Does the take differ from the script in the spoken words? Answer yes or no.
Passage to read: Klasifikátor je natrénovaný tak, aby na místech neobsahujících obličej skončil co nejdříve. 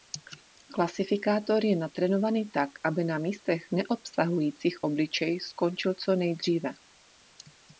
no